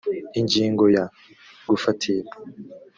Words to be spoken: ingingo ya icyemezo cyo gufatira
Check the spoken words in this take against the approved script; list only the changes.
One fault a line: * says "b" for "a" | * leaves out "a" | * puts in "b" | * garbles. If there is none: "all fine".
* leaves out "icyemezo cyo"